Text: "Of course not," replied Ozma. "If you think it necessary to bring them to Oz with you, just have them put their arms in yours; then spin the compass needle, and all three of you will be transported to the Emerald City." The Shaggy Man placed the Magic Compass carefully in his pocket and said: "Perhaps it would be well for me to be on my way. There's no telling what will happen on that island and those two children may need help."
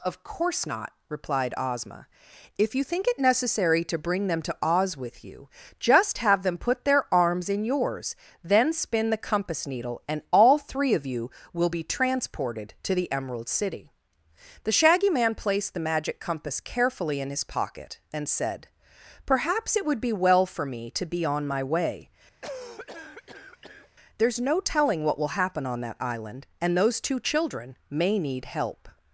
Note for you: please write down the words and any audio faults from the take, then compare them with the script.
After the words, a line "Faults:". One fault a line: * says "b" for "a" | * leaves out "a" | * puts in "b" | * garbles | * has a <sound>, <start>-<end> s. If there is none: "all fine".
"Of course not," replied Ozma. "If you think it necessary to bring them to Oz with you, just have them put their arms in yours; then spin the compass needle, and all three of you will be transported to the Emerald City." The Shaggy Man placed the Magic Compass carefully in his pocket and said: "Perhaps it would be well for me to be on my way. There's no telling what will happen on that island and those two children may need help."
Faults:
* has a cough, 22.4-23.9 s